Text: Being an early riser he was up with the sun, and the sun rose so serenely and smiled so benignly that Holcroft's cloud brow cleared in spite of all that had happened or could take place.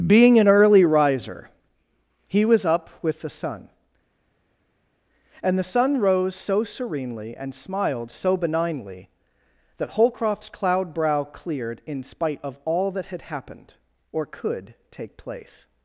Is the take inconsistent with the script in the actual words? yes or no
no